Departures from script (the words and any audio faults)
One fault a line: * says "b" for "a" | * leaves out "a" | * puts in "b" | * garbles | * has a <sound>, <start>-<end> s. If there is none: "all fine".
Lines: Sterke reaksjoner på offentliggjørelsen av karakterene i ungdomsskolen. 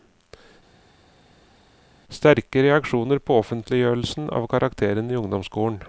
all fine